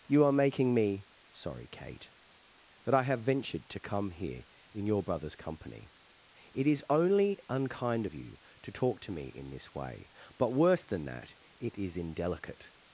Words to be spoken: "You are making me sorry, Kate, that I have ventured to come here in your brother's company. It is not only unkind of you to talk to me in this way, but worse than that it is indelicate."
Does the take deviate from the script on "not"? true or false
true